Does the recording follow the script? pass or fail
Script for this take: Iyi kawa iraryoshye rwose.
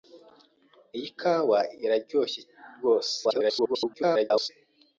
fail